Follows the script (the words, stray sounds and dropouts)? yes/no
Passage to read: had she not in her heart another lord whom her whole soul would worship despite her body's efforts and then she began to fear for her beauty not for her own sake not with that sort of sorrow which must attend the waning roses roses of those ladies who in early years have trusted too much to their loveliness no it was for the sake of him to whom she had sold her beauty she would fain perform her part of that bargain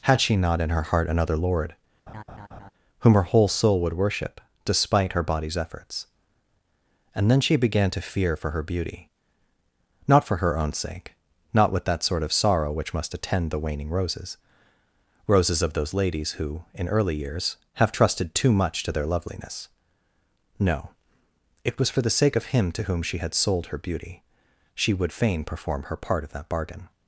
no